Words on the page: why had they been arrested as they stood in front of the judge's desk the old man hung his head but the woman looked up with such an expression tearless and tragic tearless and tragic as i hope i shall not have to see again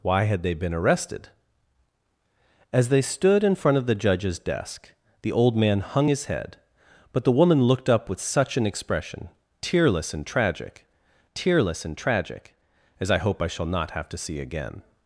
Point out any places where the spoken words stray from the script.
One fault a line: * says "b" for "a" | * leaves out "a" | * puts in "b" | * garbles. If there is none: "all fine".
all fine